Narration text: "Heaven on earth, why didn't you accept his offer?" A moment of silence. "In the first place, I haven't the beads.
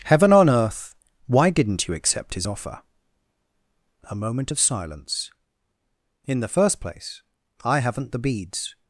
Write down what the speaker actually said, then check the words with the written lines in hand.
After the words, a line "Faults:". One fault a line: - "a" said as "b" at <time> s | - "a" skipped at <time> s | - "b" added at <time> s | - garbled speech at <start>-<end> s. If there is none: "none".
"Heaven on earth, why didn't you accept his offer?" A moment of silence. "In the first place, I haven't the beads.
Faults:
none